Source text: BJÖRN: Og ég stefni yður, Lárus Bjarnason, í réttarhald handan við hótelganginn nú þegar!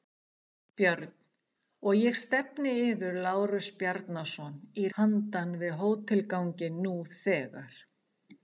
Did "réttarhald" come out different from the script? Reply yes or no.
yes